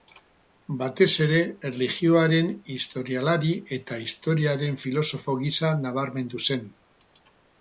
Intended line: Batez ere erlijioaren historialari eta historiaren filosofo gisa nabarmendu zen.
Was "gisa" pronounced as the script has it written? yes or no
yes